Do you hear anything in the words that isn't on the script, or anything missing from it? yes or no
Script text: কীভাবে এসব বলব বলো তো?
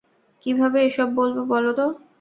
no